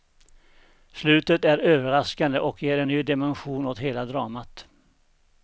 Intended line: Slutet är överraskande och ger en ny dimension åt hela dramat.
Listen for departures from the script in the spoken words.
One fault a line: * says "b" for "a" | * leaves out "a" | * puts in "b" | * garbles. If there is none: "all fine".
all fine